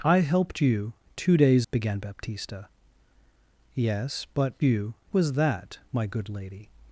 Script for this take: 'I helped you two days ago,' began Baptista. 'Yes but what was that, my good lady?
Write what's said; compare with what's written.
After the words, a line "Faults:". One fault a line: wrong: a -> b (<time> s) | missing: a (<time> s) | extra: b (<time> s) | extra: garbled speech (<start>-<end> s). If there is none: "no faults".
'I helped you two days,' began Baptista. 'Yes but you was that, my good lady?
Faults:
missing: ago (1.7 s)
wrong: what -> you (4.6 s)